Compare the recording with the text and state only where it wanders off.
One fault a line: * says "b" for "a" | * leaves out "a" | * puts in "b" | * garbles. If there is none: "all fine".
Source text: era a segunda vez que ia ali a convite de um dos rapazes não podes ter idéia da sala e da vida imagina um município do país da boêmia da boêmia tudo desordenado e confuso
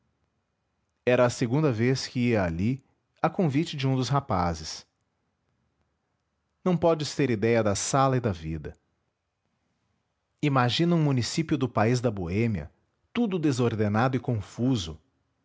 * leaves out "da boêmia"